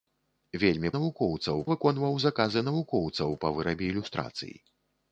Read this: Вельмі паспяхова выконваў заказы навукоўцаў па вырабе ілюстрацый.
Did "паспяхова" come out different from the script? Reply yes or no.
yes